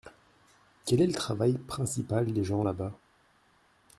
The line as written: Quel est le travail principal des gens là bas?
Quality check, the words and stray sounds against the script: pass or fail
pass